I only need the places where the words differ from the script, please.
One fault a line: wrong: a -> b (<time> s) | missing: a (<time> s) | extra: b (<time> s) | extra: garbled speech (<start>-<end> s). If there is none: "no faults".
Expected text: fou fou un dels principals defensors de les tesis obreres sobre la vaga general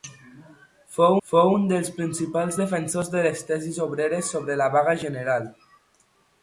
no faults